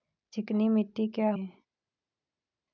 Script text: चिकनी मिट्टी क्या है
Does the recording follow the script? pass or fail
pass